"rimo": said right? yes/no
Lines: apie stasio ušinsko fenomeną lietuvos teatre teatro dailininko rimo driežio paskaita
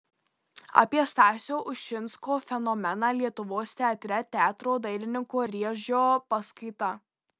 no